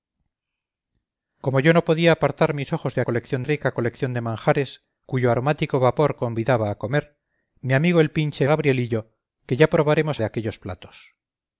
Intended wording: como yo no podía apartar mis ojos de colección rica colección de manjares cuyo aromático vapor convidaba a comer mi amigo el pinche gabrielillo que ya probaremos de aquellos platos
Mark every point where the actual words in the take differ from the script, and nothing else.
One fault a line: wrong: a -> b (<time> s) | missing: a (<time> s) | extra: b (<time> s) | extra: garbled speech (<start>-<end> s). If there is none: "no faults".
no faults